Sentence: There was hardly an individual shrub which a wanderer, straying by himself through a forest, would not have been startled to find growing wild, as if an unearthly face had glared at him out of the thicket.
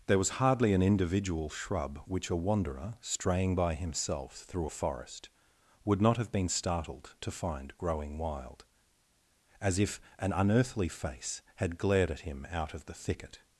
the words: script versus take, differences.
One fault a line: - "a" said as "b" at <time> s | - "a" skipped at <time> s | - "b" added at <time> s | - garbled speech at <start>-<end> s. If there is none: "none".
none